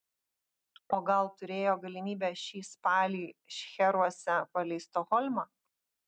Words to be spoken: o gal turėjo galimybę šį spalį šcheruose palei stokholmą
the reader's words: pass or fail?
pass